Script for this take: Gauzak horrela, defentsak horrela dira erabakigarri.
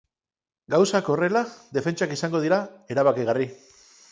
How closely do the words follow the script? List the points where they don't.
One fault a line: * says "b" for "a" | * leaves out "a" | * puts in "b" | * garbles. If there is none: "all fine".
* says "izango" for "horrela"